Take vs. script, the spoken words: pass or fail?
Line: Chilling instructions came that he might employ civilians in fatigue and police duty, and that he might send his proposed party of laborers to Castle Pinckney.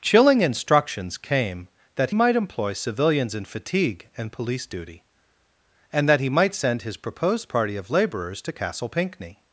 fail